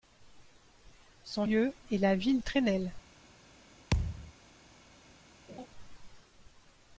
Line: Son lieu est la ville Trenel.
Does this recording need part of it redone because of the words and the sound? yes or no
yes